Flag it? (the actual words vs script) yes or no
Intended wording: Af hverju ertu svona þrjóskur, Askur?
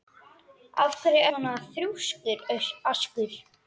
yes